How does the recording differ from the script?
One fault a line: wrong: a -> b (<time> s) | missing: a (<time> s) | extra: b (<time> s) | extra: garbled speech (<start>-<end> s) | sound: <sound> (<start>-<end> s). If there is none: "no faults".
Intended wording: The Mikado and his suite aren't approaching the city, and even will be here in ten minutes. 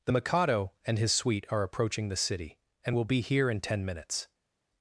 wrong: aren't -> are (1.5 s)
missing: even (3.0 s)